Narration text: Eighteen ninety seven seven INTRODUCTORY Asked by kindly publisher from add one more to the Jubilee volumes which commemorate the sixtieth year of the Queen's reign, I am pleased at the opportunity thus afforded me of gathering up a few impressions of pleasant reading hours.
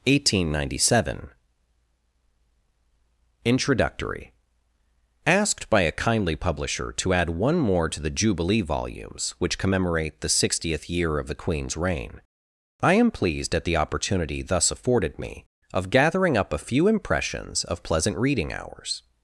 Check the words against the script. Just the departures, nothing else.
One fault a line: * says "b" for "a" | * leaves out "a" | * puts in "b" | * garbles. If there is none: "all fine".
* leaves out "seven"
* puts in "a"
* says "to" for "from"